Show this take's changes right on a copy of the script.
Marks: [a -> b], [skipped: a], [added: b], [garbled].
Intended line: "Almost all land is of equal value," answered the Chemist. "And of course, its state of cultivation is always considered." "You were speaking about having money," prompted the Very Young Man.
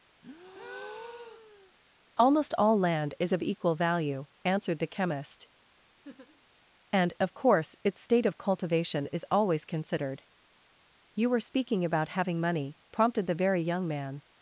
"Almost all land is of equal value," answered the Chemist. "And of course, its state of cultivation is always considered." "You were speaking about having money," prompted the Very Young Man.